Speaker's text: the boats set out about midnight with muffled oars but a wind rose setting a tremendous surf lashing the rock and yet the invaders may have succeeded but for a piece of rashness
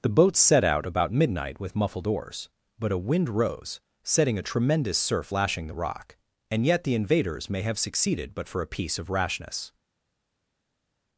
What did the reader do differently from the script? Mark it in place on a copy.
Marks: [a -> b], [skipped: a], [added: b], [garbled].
the boats set out about midnight with muffled oars but a wind rose setting a tremendous surf lashing the rock and yet the invaders may have succeeded but for a piece of rashness